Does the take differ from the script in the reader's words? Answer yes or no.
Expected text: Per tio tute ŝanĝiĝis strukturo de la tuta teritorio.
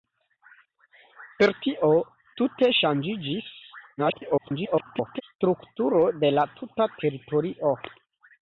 yes